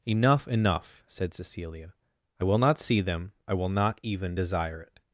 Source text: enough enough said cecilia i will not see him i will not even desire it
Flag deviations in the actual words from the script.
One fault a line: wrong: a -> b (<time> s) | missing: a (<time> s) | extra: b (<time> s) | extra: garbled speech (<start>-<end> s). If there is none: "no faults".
wrong: him -> them (3.0 s)